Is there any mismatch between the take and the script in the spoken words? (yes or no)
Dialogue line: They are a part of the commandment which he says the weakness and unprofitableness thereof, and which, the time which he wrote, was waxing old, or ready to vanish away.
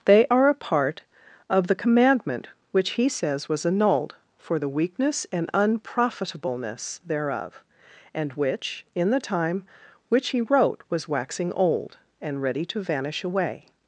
yes